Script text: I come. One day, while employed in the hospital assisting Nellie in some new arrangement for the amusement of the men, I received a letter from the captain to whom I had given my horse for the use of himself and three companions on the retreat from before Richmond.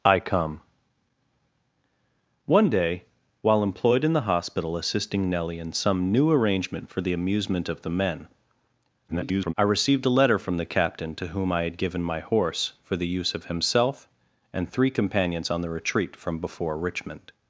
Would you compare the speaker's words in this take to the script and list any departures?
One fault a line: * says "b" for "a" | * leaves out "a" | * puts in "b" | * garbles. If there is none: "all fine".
* garbles